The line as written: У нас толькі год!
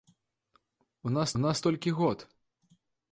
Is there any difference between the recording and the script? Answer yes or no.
yes